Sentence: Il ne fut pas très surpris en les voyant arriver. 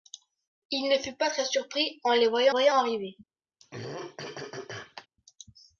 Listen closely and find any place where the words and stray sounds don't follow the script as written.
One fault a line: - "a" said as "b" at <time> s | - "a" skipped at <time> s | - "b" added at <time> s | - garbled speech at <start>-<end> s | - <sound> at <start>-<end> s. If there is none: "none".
- "voyant" added at 2.5 s
- throat clearing at 3.6-5.1 s